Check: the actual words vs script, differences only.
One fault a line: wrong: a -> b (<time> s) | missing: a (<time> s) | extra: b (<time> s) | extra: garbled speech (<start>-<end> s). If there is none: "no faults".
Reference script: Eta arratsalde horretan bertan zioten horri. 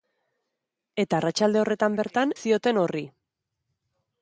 no faults